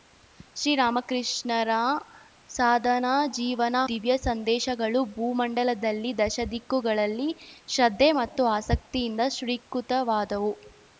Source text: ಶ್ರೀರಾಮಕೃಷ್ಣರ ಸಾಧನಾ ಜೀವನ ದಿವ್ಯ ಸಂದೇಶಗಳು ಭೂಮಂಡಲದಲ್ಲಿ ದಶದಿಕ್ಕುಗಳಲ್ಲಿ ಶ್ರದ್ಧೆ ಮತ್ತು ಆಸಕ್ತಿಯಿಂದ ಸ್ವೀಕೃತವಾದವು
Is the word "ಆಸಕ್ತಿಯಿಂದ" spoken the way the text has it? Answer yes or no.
yes